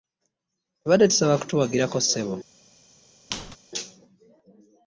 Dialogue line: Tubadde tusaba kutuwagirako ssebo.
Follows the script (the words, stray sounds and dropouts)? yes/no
no